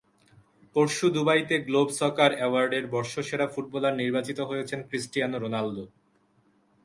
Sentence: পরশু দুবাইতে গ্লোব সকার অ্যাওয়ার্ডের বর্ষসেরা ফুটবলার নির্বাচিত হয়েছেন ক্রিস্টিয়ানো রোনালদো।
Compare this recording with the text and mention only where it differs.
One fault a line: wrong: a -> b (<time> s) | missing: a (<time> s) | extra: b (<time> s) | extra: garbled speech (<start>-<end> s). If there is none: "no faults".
no faults